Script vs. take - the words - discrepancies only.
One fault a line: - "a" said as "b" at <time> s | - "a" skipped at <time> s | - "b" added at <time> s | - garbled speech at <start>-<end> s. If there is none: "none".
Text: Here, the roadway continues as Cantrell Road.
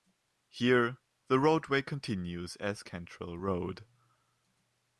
none